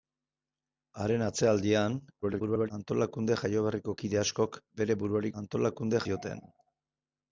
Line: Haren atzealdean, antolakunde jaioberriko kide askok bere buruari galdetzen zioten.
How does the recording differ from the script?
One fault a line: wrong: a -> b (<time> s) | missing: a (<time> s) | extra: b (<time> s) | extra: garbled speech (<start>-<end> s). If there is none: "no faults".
extra: garbled speech (2.2-2.7 s)
wrong: galdetzen -> antolakunde (5.4 s)